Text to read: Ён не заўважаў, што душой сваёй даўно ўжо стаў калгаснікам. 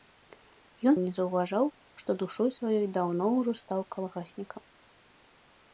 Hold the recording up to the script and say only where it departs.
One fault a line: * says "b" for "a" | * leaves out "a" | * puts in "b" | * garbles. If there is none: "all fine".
all fine